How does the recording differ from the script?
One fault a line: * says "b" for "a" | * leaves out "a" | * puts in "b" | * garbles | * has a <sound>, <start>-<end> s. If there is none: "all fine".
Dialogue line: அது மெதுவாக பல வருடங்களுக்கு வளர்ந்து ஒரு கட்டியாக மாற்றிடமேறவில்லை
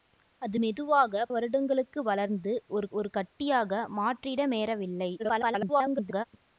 * leaves out "பல"
* puts in "ஒரு"
* garbles